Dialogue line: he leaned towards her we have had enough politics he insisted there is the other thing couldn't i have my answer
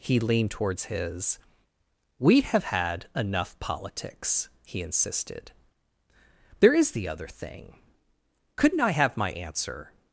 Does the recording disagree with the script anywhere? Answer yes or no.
yes